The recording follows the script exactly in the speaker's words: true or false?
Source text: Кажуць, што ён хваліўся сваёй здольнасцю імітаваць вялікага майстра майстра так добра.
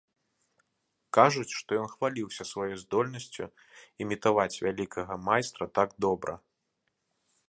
false